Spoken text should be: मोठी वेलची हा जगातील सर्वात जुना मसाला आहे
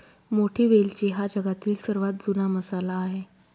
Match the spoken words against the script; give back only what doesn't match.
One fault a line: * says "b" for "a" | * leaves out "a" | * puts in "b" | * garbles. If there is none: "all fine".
all fine